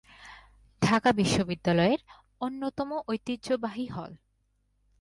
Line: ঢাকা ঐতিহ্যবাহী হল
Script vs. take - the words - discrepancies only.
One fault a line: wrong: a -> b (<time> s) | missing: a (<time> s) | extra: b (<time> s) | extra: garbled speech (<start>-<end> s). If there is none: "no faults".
extra: বিশ্ববিদ্যালয়ের অন্যতম (1.1 s)